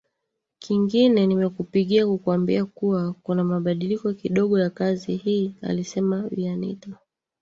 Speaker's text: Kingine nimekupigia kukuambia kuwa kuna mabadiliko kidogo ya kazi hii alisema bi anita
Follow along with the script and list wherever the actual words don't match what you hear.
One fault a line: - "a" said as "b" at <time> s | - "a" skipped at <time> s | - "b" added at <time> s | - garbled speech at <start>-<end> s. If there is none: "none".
none